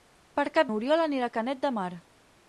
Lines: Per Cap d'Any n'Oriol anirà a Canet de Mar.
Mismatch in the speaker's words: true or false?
true